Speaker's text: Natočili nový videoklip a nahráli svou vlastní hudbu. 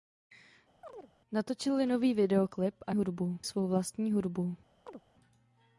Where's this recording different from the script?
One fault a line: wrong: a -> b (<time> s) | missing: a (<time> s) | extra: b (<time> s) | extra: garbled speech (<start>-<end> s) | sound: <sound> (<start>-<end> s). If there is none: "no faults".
sound: chirp (0.8-1.1 s)
wrong: nahráli -> hudbu (2.9 s)
sound: chirp (4.9-5.0 s)